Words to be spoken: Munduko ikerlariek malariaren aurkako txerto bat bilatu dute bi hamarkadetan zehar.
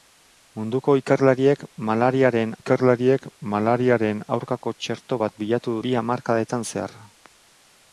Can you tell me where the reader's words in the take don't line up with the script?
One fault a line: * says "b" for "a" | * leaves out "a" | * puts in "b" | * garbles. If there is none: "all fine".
* puts in "ikerlariek malariaren"
* leaves out "dute"